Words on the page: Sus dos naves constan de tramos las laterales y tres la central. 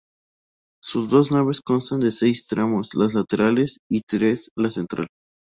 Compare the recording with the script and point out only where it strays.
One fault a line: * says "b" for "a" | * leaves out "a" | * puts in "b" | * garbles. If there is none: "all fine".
* puts in "seis"